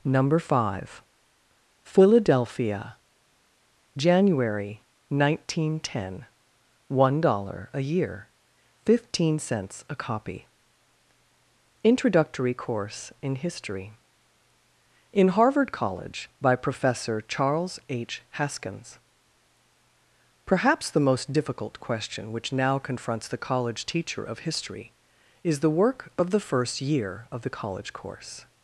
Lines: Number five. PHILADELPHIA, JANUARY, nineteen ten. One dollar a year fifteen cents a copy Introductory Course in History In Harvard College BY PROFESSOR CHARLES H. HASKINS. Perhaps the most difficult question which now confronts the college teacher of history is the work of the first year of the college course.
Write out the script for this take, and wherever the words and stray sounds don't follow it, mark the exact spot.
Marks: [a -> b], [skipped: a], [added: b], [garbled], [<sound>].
Number five. PHILADELPHIA, JANUARY, nineteen ten. One dollar a year fifteen cents a copy Introductory Course in History In Harvard College BY PROFESSOR CHARLES H. HASKINS. Perhaps the most difficult question which now confronts the college teacher of history is the work of the first year of the college course.